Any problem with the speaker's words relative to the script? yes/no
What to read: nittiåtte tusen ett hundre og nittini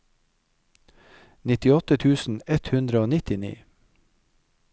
no